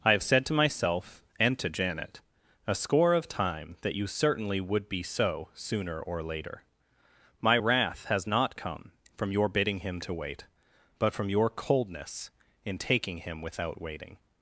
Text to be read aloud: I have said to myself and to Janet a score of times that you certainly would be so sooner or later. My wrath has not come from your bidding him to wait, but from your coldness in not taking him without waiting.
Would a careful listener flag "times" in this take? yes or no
yes